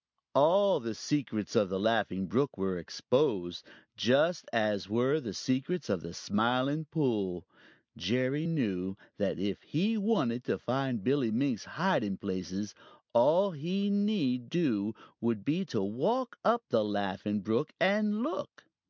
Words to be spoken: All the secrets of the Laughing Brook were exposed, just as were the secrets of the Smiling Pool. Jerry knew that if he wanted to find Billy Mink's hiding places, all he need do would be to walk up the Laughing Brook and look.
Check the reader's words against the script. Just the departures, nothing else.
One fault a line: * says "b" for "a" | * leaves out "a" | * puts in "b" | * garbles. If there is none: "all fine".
all fine